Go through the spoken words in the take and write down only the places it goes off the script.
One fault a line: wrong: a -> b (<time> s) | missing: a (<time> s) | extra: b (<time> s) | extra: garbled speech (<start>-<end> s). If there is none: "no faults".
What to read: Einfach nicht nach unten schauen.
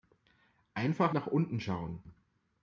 missing: nicht (1.1 s)